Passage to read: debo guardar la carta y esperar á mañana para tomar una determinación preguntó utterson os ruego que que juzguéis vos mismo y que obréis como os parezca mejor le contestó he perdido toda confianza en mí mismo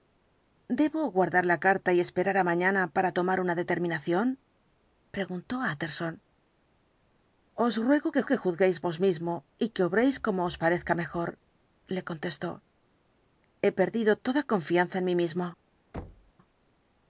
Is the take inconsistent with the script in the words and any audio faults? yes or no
yes